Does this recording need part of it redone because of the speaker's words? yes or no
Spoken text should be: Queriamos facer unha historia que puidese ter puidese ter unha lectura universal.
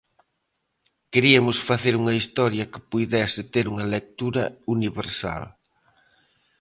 yes